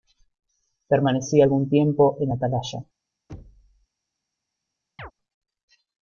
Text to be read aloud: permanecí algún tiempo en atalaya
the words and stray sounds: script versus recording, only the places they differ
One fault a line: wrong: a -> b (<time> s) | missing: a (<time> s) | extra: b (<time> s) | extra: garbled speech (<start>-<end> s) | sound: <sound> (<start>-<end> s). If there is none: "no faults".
sound: thud (3.3-3.9 s)
sound: chirp (5.0-5.1 s)